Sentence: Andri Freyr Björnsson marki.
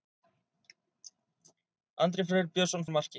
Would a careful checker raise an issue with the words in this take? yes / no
no